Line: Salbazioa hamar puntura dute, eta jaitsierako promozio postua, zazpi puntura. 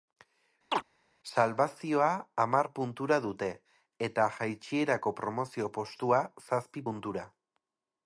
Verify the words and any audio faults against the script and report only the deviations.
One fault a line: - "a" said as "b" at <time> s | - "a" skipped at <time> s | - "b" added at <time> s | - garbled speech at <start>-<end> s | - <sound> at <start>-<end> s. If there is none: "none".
- chirp at 0.7-0.8 s